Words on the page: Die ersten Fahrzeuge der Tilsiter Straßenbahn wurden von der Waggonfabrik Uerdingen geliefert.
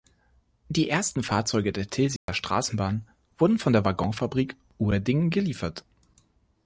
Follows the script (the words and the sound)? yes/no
no